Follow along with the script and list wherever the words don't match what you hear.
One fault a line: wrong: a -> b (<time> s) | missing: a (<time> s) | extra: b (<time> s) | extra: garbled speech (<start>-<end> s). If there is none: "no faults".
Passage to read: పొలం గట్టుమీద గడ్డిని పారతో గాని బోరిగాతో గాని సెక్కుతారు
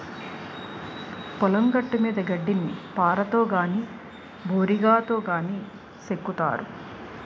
no faults